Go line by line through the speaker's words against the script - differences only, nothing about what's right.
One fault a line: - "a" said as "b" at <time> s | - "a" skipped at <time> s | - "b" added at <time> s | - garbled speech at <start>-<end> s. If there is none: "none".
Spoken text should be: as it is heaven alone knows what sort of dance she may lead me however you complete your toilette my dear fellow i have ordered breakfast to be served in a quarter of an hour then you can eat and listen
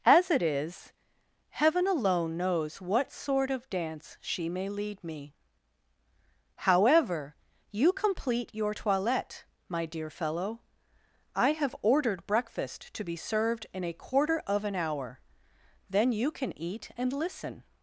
none